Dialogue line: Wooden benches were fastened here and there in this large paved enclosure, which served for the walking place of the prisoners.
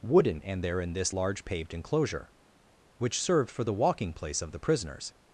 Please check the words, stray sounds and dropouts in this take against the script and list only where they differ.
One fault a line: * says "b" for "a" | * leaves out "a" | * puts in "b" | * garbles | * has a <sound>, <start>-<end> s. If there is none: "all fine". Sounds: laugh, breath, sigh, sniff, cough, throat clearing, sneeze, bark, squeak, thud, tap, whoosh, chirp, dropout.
* leaves out "benches were fastened here"